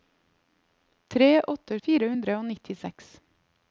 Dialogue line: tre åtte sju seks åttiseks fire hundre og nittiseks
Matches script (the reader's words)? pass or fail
fail